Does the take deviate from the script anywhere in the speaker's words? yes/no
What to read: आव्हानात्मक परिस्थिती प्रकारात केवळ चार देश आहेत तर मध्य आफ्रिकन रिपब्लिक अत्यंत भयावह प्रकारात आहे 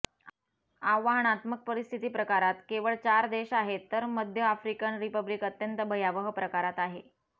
no